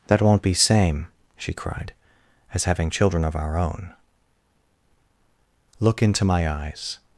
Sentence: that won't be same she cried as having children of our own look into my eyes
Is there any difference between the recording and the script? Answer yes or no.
no